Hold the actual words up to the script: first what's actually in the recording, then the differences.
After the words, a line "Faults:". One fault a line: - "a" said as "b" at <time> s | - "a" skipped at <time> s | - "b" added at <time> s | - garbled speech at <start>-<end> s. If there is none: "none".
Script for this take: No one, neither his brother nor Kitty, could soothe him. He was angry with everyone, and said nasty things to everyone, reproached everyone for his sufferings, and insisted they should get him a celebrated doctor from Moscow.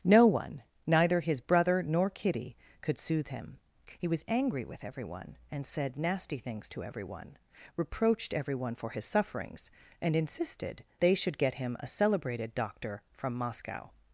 No one, neither his brother nor Kitty, could soothe him. He was angry with everyone, and said nasty things to everyone, reproached everyone for his sufferings, and insisted they should get him a celebrated doctor from Moscow.
Faults:
none